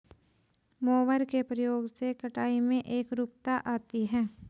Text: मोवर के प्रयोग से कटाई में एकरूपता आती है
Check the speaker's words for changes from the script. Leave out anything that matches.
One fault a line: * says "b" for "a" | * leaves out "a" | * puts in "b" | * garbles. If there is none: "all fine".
all fine